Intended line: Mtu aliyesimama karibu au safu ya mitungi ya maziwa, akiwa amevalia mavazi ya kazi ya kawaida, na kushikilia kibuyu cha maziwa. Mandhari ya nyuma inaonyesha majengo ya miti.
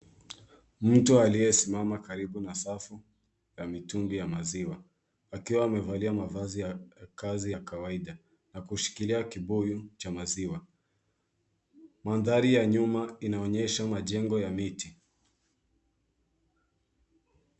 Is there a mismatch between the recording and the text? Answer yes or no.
yes